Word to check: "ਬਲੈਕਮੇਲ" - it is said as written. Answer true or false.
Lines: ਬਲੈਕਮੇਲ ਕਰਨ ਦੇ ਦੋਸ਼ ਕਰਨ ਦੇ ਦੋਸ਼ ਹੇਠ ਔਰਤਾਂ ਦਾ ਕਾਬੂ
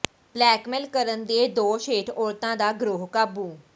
true